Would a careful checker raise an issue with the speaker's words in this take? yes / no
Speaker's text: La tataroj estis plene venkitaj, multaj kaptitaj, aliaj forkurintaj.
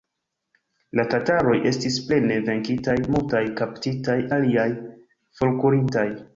no